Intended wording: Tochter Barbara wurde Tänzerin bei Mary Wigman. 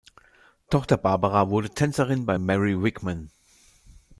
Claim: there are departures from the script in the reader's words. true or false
false